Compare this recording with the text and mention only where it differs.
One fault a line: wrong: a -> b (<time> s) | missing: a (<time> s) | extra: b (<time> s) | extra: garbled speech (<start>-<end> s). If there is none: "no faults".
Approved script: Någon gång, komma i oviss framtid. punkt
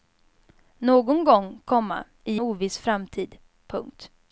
no faults